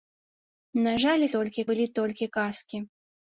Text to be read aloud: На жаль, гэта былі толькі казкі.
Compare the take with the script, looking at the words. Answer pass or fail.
fail